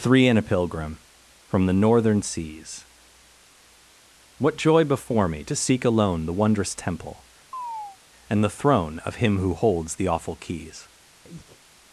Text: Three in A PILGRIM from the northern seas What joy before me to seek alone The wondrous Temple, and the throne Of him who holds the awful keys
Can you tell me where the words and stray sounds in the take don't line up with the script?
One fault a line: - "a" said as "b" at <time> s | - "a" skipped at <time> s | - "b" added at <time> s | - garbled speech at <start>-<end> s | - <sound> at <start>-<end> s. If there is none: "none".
- chirp at 7.5-8.0 s
- breath at 11.2-11.6 s